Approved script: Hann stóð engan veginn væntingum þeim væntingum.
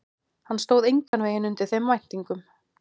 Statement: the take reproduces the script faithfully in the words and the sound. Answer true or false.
false